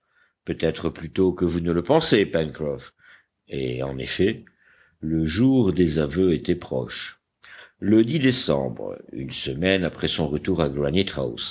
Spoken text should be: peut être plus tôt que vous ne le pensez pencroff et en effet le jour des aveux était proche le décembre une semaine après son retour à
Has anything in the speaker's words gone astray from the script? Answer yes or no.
no